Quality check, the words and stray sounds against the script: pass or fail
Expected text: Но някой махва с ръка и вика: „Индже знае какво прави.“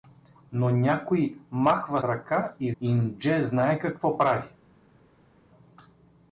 fail